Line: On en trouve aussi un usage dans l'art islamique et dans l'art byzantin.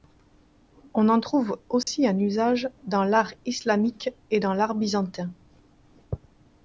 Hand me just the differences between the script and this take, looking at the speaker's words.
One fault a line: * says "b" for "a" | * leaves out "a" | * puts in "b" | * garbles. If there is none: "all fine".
all fine